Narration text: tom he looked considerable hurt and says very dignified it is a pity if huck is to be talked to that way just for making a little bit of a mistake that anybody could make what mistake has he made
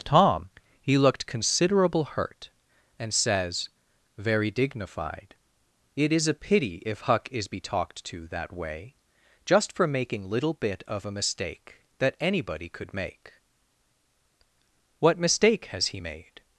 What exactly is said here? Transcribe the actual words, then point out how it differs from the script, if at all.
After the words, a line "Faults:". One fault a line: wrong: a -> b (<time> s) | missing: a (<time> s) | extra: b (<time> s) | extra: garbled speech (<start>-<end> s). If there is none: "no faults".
tom he looked considerable hurt and says very dignified it is a pity if huck is be talked to that way just for making little bit of a mistake that anybody could make what mistake has he made
Faults:
missing: to (7.5 s)
missing: a (10.3 s)